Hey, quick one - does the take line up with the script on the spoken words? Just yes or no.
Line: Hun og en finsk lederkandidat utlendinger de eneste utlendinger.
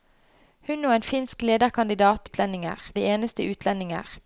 yes